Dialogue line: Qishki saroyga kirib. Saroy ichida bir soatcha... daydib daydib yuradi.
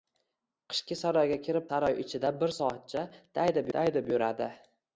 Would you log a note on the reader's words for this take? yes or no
no